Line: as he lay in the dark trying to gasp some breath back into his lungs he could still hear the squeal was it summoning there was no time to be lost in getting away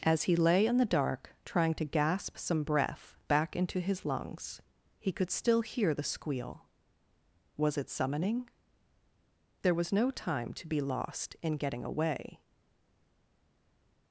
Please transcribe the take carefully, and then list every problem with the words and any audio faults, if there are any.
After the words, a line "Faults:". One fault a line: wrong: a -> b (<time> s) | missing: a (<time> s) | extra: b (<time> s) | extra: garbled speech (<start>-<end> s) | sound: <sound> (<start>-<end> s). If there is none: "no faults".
as he lay in the dark trying to gasp some breath back into his lungs he could still hear the squeal was it summoning there was no time to be lost in getting away
Faults:
no faults